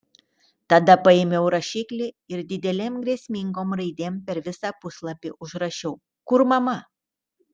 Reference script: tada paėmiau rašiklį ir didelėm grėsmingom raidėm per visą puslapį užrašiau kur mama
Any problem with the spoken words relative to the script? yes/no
no